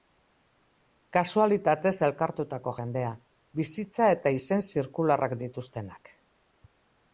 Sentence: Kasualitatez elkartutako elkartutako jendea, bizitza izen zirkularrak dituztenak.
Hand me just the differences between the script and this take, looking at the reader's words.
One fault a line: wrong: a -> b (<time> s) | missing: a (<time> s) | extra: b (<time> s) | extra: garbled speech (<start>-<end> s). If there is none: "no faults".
missing: elkartutako (2.7 s)
extra: eta (4.2 s)